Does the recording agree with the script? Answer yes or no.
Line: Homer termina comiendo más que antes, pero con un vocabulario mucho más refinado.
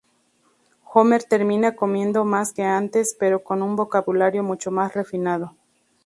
yes